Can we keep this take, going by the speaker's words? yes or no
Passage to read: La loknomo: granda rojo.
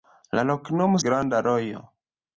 yes